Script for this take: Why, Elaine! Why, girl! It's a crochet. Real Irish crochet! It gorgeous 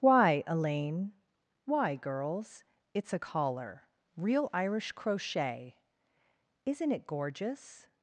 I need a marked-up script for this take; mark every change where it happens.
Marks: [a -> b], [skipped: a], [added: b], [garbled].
Why, Elaine! Why, [girl! -> girls] It's a [crochet. -> collar] Real Irish crochet! [added: Isn't] It gorgeous